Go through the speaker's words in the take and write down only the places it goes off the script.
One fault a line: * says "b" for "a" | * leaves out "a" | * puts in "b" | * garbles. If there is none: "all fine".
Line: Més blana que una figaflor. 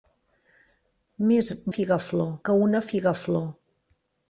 * says "figaflor" for "blana"